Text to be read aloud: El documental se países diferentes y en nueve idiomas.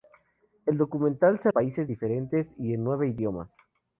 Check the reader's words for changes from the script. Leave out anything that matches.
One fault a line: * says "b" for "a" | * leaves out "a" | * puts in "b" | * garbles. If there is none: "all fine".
all fine